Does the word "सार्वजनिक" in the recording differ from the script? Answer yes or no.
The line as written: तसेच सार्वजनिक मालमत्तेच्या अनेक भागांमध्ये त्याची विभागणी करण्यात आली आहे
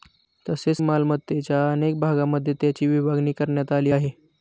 yes